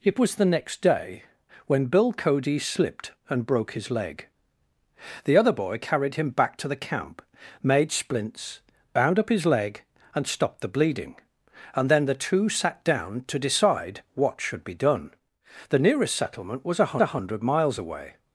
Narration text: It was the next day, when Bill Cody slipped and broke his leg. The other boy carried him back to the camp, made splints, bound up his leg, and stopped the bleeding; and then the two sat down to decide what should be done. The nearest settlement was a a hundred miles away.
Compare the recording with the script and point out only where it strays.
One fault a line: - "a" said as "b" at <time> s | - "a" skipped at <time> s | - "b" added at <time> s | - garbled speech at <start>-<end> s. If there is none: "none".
none